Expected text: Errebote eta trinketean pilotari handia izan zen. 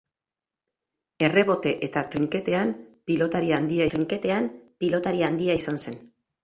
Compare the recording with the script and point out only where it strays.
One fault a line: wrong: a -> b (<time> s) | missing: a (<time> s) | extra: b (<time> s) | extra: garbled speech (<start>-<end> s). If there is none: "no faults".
extra: trinketean pilotari handia (3.9 s)